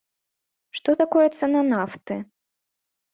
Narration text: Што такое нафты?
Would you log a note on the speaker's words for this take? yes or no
yes